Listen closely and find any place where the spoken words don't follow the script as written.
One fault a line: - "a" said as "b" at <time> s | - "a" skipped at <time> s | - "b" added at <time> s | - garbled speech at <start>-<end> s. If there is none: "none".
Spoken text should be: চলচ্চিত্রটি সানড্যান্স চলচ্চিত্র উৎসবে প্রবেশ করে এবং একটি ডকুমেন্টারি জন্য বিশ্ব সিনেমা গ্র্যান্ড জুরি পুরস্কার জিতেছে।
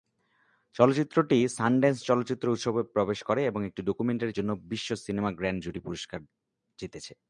none